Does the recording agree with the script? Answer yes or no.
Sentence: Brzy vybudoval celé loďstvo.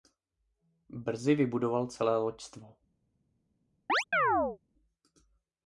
yes